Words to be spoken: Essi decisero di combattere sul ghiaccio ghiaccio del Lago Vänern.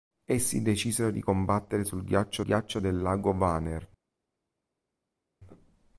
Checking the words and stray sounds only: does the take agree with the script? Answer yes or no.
yes